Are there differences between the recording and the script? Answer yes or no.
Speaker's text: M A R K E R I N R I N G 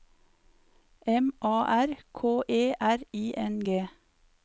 yes